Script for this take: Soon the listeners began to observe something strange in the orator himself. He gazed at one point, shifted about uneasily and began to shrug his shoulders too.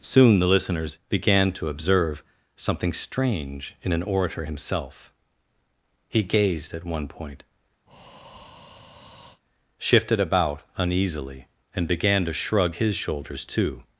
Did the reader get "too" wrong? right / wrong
right